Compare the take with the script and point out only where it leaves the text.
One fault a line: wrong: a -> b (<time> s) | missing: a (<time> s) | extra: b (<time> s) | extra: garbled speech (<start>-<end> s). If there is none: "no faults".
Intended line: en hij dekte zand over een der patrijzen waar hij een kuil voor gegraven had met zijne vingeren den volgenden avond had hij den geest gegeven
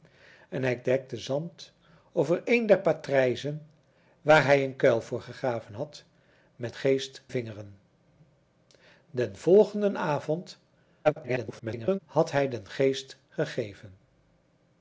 wrong: zijne -> geest (6.7 s)
extra: garbled speech (11.0-12.0 s)